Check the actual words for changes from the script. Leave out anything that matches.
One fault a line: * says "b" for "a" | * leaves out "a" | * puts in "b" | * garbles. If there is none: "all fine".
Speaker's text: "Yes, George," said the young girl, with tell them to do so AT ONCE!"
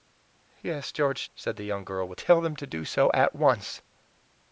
all fine